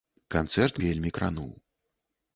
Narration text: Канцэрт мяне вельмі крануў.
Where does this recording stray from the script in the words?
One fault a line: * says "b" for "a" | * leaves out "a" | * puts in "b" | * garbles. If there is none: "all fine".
* leaves out "мяне"